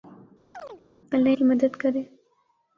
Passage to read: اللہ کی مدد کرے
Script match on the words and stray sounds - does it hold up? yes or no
no